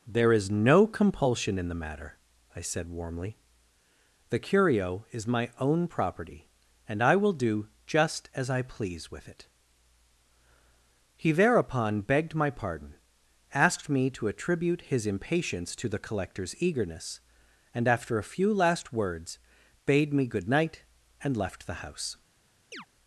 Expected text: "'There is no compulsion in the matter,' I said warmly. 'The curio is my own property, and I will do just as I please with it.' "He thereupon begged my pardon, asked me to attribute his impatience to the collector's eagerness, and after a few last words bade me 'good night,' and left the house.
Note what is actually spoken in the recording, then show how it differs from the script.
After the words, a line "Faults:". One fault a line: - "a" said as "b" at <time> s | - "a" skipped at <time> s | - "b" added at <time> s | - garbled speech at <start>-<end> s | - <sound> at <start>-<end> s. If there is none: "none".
"'There is no compulsion in the matter,' I said warmly. 'The curio is my own property, and I will do just as I please with it.' "He thereupon begged my pardon, asked me to attribute his impatience to the collector's eagerness, and after a few last words bade me 'good night,' and left the house.
Faults:
- chirp at 22.7-22.9 s